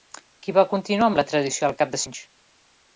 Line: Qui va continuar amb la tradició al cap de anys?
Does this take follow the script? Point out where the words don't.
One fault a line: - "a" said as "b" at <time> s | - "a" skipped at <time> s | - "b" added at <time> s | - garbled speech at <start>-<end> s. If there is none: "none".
none